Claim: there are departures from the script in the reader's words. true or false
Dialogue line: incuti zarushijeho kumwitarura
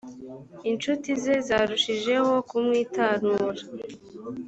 true